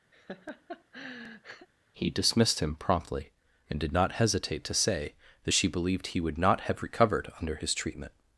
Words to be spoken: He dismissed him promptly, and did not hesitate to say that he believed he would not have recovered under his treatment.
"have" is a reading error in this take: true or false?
false